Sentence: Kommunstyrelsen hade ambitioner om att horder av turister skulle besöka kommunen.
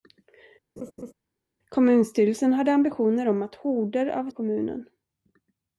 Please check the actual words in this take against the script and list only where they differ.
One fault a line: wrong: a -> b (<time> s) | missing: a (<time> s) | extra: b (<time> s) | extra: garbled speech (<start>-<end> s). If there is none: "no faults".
missing: turister skulle besöka (4.3 s)